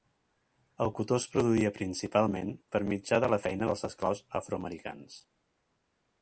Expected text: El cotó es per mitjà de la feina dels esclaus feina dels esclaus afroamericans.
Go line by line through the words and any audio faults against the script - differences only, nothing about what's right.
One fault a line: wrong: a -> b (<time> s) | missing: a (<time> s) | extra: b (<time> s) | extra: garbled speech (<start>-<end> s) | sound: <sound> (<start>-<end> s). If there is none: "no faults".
extra: produïa principalment (1.3 s)
missing: feina dels esclaus (4.2 s)